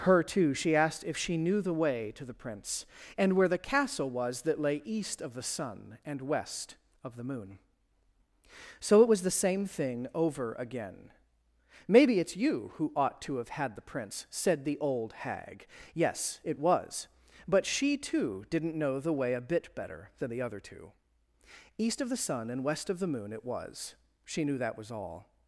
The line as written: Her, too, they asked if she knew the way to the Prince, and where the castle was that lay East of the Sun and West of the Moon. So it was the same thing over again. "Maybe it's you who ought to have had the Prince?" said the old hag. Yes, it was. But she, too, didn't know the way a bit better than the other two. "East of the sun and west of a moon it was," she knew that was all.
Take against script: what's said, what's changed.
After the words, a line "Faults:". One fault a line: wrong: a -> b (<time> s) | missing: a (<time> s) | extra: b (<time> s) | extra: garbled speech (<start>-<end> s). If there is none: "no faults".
Her, too, she asked if she knew the way to the Prince, and where the castle was that lay East of the Sun and West of the Moon. So it was the same thing over again. "Maybe it's you who ought to have had the Prince?" said the old hag. Yes, it was. But she, too, didn't know the way a bit better than the other two. "East of the sun and west of the moon it was," she knew that was all.
Faults:
wrong: they -> she (0.6 s)
wrong: a -> the (23.0 s)